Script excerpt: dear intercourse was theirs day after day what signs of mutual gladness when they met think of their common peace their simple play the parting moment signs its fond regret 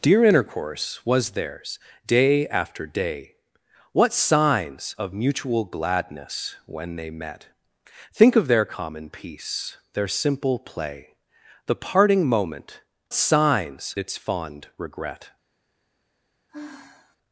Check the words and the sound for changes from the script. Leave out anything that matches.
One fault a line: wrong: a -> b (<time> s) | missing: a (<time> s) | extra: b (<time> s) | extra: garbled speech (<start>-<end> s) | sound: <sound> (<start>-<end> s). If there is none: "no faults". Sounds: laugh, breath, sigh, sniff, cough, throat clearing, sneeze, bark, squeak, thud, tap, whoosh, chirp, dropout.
sound: sigh (16.5-17.2 s)